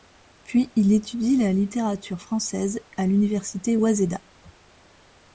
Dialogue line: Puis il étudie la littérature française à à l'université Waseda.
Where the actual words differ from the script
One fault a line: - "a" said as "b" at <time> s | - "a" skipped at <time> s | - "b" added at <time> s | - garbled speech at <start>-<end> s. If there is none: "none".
- "à" skipped at 3.1 s